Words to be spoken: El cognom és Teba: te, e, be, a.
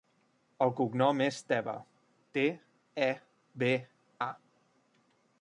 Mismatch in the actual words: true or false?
false